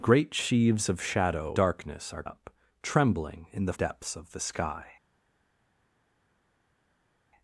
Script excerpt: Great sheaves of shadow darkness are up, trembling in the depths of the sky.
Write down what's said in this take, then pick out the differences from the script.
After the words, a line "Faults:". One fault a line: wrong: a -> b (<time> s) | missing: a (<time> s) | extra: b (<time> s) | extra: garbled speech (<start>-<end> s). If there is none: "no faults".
Great sheaves of shadow darkness are up, trembling in the depths of the sky.
Faults:
no faults